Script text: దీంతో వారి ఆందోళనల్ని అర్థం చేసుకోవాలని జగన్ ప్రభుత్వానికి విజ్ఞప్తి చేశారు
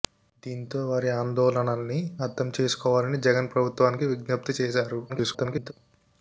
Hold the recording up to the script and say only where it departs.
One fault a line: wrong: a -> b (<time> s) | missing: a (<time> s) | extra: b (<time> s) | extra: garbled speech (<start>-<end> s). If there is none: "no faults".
extra: garbled speech (5.1-5.7 s)